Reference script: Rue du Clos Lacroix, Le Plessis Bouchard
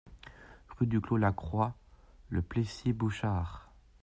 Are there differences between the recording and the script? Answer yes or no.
no